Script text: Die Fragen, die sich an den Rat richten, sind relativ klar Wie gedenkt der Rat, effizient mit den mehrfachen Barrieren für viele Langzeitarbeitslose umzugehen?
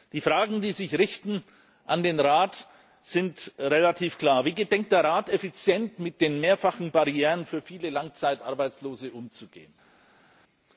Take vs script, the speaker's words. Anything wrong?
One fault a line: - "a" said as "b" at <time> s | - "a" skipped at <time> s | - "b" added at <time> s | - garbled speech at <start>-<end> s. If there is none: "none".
none